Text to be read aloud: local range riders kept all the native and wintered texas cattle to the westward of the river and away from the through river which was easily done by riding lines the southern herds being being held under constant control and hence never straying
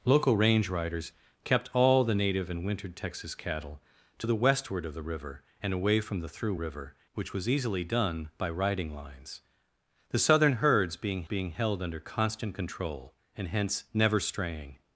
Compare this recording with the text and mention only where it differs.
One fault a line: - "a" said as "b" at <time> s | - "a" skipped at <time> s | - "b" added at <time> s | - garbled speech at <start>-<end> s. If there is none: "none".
none